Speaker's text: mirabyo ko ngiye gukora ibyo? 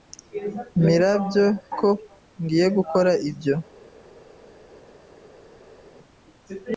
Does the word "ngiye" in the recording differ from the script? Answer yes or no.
no